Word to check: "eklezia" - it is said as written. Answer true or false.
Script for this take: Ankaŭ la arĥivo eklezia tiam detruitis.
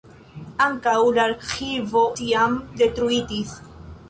false